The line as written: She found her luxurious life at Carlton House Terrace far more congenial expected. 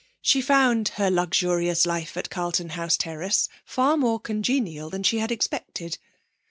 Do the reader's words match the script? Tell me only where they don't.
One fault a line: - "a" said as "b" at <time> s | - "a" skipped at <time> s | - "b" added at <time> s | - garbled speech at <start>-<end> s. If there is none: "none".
- "than she had" added at 4.9 s